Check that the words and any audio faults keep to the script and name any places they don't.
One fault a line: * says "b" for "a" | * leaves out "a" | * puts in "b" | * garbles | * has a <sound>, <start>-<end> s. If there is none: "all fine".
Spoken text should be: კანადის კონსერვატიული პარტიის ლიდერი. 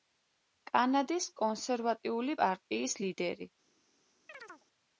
* has a chirp, 4.3-4.7 s